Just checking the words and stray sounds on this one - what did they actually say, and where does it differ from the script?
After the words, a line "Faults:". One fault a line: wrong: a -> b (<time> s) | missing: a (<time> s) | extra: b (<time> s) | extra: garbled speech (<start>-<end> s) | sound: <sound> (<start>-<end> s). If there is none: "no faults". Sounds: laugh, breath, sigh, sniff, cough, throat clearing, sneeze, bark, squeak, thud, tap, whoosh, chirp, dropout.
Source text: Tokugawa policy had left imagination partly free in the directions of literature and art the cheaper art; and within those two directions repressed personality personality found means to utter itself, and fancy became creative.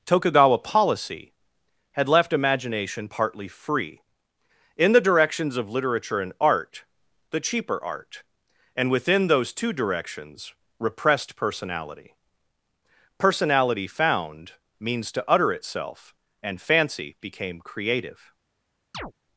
Tokugawa policy had left imagination partly free in the directions of literature and art the cheaper art; and within those two directions repressed personality personality found means to utter itself, and fancy became creative.
Faults:
sound: chirp (18.9-19.1 s)